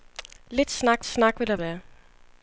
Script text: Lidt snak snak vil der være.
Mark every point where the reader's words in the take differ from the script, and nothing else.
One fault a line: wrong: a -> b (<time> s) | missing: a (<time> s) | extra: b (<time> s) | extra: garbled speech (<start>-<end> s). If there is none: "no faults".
no faults